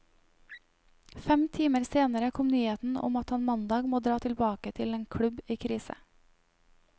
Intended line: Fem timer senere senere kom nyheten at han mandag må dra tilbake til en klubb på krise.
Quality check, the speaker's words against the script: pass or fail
fail